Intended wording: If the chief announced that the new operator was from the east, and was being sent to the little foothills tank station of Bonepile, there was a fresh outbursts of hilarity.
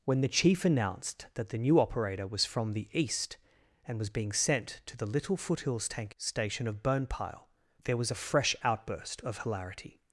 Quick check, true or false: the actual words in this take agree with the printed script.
false